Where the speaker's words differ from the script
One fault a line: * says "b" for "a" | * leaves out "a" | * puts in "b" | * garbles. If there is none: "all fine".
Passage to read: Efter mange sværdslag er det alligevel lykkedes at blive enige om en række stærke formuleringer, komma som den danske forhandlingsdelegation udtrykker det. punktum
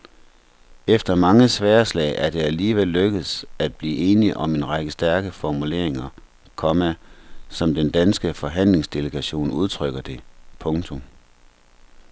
all fine